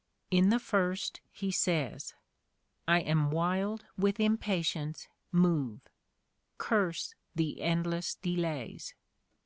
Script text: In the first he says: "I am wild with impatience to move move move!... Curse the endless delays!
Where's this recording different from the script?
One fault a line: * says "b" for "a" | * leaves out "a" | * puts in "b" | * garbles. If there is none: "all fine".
* leaves out "to move move"